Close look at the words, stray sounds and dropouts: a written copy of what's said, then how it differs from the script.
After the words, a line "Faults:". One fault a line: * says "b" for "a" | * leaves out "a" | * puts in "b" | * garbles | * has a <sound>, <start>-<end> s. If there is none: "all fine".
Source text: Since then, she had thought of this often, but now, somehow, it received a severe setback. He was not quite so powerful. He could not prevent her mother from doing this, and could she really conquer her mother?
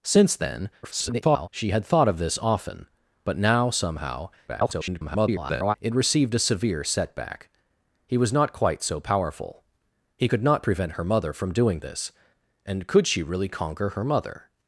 Since then, [garbled] she had thought of this often, but now, somehow, [garbled] it received a severe setback. He was not quite so powerful. He could not prevent her mother from doing this, and could she really conquer her mother?
Faults:
* garbles
* garbles